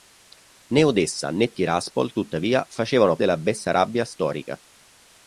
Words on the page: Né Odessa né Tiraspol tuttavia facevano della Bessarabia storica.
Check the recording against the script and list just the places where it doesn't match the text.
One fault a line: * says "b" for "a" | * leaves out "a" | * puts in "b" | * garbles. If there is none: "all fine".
all fine